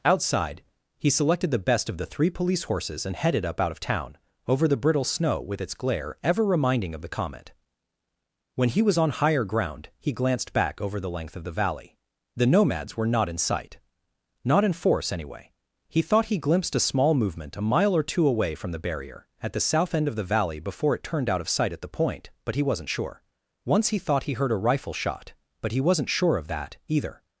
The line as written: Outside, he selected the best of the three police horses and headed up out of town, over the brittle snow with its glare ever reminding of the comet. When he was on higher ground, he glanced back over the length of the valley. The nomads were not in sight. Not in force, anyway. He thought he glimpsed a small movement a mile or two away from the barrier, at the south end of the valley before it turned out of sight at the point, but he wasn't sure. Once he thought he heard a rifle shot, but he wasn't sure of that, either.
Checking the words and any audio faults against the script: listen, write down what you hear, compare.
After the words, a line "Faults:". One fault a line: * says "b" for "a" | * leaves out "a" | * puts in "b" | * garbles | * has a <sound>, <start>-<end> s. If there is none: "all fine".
Outside, he selected the best of the three police horses and headed up out of town, over the brittle snow with its glare ever reminding of the comet. When he was on higher ground, he glanced back over the length of the valley. The nomads were not in sight. Not in force, anyway. He thought he glimpsed a small movement a mile or two away from the barrier, at the south end of the valley before it turned out of sight at the point, but he wasn't sure. Once he thought he heard a rifle shot, but he wasn't sure of that, either.
Faults:
all fine